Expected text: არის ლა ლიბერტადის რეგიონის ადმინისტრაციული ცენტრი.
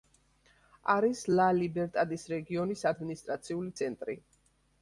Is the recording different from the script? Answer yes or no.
no